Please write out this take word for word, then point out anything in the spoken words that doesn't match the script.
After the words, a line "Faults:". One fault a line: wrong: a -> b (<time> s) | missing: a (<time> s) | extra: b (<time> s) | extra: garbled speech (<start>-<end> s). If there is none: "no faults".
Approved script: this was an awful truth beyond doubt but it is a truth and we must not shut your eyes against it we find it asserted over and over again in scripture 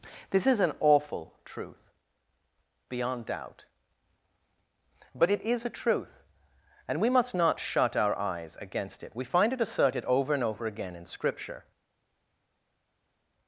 this is an awful truth beyond doubt but it is a truth and we must not shut our eyes against it we find it asserted over and over again in scripture
Faults:
wrong: was -> is (0.5 s)
wrong: your -> our (8.0 s)